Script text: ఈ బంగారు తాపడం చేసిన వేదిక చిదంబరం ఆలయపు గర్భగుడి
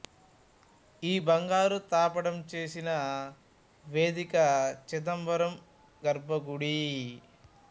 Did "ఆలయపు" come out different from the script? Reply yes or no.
yes